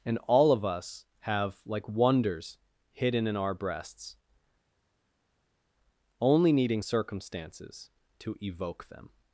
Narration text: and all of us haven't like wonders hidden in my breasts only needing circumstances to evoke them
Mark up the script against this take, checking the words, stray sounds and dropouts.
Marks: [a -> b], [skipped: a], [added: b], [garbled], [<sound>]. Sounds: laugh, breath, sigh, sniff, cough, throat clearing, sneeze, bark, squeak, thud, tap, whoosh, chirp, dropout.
and all of us [haven't -> have] like wonders hidden in [my -> our] breasts only needing circumstances to evoke them